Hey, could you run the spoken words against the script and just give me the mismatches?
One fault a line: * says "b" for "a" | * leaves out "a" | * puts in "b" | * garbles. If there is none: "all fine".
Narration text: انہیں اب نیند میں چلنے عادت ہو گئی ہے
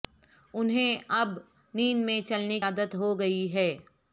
all fine